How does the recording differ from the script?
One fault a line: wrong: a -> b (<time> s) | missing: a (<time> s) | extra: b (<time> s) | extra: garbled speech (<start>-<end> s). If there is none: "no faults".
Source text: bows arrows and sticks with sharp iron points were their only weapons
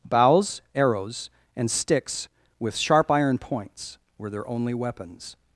no faults